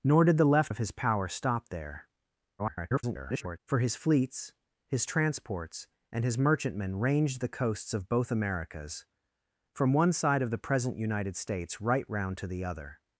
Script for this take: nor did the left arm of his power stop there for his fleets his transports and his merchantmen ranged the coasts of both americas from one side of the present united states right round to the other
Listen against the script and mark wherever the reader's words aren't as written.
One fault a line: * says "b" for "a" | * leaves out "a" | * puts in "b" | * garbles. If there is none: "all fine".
* leaves out "arm"
* garbles